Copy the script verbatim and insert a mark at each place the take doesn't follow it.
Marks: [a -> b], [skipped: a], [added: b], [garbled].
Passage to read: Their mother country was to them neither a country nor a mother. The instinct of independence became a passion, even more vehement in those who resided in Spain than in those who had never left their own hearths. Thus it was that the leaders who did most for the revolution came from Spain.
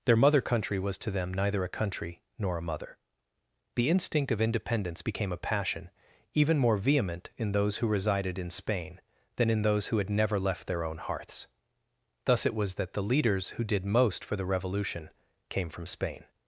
Their mother country was to them neither a country nor a mother. The instinct of independence became a passion, even more vehement in those who resided in Spain than in those who had never left their own hearths. Thus it was that the leaders who did most for the revolution came from Spain.